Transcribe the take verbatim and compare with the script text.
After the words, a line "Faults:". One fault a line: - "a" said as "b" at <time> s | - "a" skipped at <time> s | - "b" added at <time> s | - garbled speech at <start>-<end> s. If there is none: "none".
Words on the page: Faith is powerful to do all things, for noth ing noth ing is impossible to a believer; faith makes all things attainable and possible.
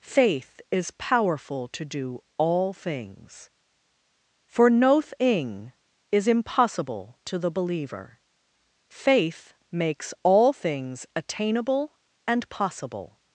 Faith is powerful to do all things, for noth ing is impossible to the believer; faith makes all things attainable and possible.
Faults:
- "noth ing" skipped at 5.7 s
- "a" said as "the" at 7.4 s